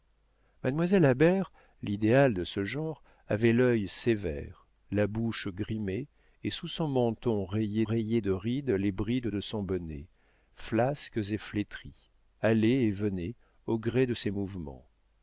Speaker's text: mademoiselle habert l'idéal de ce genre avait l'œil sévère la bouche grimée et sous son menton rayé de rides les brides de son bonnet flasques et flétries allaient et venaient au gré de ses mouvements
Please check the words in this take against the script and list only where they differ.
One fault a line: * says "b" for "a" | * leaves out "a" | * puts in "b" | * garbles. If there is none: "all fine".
* puts in "rayé"